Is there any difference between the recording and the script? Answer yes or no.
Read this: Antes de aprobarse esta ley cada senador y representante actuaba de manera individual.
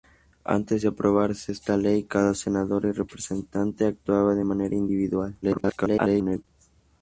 yes